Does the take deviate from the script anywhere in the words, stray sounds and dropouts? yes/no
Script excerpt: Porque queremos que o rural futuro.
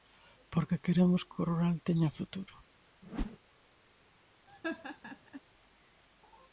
yes